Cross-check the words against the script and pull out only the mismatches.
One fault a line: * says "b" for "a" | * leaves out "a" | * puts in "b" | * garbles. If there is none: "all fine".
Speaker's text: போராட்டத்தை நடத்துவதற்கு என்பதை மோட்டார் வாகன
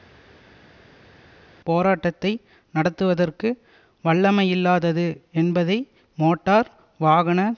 * puts in "வல்லமையில்லாதது"